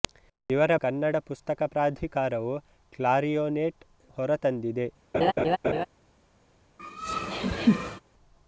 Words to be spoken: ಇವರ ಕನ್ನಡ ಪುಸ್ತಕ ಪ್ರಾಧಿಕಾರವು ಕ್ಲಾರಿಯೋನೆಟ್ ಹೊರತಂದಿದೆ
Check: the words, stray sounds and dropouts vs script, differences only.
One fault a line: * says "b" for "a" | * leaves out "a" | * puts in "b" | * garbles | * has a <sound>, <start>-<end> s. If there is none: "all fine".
* has a laugh, 5.1-5.9 s
* has a laugh, 6.8-8.0 s